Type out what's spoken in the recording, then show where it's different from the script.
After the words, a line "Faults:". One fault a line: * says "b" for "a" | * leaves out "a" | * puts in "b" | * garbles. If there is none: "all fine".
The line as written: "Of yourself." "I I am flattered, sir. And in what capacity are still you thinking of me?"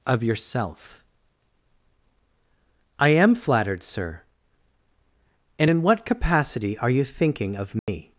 "Of yourself." "I am flattered, sir. And in what capacity are you thinking of me?"
Faults:
* leaves out "I"
* leaves out "still"